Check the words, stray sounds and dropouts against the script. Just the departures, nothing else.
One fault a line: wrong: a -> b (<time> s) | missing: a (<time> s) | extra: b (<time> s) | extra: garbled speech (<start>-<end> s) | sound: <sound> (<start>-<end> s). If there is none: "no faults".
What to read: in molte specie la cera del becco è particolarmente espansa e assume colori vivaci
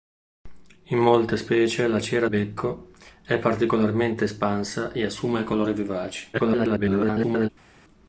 missing: del (2.2 s)
extra: garbled speech (6.3-7.5 s)